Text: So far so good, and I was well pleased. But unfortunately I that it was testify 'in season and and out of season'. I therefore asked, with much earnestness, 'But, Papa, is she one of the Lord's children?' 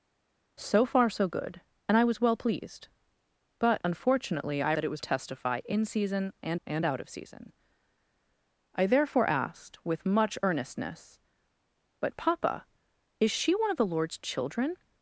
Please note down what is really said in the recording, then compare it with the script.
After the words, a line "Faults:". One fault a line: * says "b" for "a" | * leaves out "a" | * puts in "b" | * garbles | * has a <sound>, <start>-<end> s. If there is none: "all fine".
So far so good, and I was well pleased. But unfortunately I that it was testify 'in season and and out of season'. I therefore asked, with much earnestness, 'But, Papa, is she one of the Lord's children?'
Faults:
all fine